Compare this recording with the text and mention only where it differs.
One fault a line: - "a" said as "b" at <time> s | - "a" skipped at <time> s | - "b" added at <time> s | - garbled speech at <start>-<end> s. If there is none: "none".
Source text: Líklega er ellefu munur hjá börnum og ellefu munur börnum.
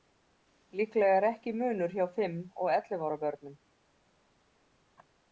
- "ellefu" said as "ekki" at 1.3 s
- "börnum" said as "fimm" at 2.1 s
- "munur" said as "ára" at 3.1 s